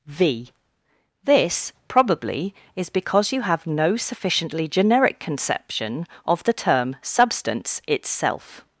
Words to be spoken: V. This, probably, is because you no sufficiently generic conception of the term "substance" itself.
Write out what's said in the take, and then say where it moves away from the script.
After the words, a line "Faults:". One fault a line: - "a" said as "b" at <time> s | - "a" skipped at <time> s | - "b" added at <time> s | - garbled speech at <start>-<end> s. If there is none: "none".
V. This, probably, is because you have no sufficiently generic conception of the term "substance" itself.
Faults:
- "have" added at 3.4 s